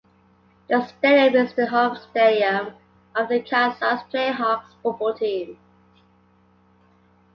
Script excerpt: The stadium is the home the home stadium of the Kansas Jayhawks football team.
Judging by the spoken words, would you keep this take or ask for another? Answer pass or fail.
fail